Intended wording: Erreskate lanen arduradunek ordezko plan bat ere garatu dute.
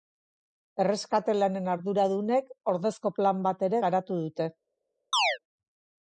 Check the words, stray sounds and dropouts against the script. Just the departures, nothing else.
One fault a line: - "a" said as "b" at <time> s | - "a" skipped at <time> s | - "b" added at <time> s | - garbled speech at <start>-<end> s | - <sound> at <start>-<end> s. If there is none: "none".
- chirp at 5.1-5.4 s